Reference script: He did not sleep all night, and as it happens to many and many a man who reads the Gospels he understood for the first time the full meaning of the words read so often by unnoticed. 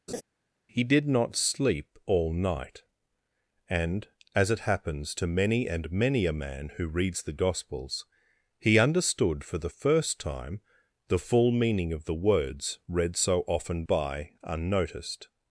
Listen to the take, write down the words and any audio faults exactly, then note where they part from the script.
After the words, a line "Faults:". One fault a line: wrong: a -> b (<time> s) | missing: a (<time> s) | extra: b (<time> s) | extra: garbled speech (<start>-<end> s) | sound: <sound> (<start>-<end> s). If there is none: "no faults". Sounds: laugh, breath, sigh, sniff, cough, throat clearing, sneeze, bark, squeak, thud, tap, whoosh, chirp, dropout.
He did not sleep all night, and as it happens to many and many a man who reads the Gospels he understood for the first time the full meaning of the words read so often by unnoticed.
Faults:
sound: laugh (0.1-0.2 s)